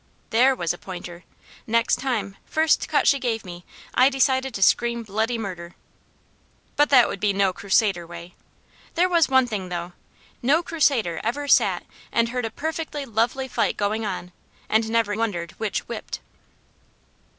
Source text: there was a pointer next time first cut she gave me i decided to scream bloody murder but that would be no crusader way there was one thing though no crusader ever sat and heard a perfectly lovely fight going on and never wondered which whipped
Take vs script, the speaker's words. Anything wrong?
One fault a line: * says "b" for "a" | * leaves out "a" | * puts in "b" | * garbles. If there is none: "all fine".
all fine